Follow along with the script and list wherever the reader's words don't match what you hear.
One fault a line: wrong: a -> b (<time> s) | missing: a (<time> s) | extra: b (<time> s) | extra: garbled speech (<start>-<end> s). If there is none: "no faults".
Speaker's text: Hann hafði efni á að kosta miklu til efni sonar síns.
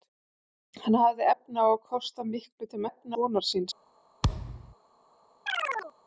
no faults